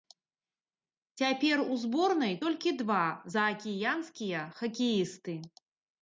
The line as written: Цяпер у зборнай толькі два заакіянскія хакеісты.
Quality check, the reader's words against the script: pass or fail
pass